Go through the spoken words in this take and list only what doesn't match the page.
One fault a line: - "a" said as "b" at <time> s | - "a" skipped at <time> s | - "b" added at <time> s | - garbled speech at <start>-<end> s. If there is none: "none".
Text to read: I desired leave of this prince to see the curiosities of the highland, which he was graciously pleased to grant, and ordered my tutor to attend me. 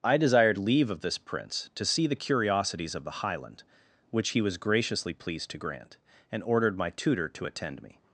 none